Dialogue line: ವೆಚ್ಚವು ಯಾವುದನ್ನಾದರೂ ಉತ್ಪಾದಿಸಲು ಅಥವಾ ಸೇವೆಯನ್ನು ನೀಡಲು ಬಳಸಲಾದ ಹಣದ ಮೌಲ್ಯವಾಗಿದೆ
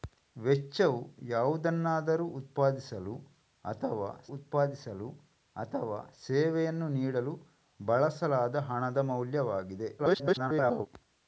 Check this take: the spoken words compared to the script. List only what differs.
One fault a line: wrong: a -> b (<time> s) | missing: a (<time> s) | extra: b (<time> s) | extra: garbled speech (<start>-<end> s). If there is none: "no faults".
extra: ಉತ್ಪಾದಿಸಲು ಅಥವಾ (4.3 s)
extra: garbled speech (10.0-10.9 s)